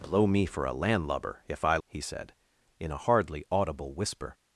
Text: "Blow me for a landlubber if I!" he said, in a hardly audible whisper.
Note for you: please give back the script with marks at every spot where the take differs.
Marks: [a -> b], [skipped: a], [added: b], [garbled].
"Blow me for a landlubber if I!" he said, in a hardly audible whisper.